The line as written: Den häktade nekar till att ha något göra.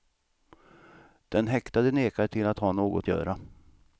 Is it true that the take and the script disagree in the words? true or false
false